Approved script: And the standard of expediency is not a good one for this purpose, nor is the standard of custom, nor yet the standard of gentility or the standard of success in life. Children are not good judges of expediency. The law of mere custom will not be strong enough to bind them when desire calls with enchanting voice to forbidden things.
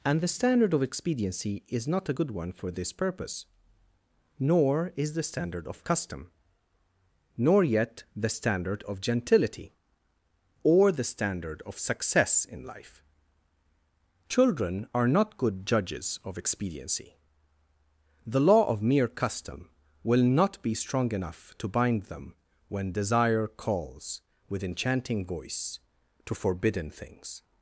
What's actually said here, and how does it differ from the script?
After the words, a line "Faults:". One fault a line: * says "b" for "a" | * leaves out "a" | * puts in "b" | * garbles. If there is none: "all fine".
And the standard of expediency is not a good one for this purpose, nor is the standard of custom, nor yet the standard of gentility or the standard of success in life. Children are not good judges of expediency. The law of mere custom will not be strong enough to bind them when desire calls with enchanting voice to forbidden things.
Faults:
all fine